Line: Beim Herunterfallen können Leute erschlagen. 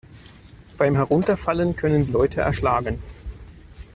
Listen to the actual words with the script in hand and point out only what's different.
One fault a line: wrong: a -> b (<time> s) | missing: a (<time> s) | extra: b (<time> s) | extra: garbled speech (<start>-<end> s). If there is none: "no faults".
no faults